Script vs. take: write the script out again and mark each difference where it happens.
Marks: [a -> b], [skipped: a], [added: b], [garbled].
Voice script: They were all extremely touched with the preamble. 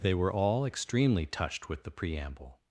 They were all extremely touched with the preamble.